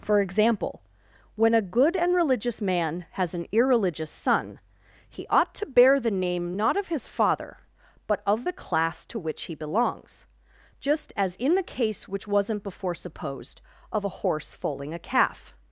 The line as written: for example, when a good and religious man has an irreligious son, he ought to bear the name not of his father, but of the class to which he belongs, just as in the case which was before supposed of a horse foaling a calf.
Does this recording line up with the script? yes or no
no